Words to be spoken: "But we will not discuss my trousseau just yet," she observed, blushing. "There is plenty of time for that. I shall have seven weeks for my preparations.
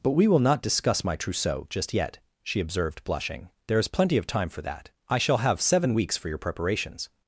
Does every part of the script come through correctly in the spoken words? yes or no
no